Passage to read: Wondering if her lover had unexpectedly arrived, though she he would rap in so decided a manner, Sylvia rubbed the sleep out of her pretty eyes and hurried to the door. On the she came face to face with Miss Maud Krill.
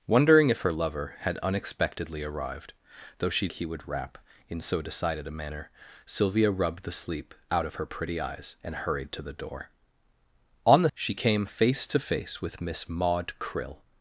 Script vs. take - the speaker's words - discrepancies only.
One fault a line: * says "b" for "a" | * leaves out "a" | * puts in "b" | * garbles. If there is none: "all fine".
all fine